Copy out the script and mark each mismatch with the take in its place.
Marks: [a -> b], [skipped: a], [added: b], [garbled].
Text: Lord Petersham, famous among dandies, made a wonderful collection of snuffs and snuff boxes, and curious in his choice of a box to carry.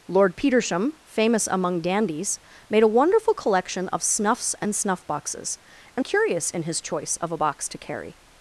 Lord Petersham, famous among dandies, made a wonderful collection of snuffs and snuff boxes, and curious in his choice of a box to carry.